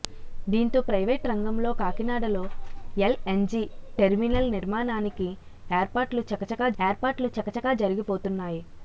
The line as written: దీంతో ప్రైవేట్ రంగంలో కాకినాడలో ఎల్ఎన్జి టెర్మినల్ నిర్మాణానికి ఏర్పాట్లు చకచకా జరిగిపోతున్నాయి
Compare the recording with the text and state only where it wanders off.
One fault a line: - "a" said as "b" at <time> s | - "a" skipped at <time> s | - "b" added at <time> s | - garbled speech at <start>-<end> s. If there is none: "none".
- "ఏర్పాట్లు చకచకా" added at 6.8 s